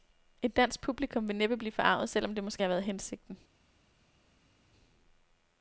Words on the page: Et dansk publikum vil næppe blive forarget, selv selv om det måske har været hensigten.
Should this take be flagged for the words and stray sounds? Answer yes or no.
yes